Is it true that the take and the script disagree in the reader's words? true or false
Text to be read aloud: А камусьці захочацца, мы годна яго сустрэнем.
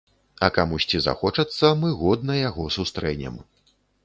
false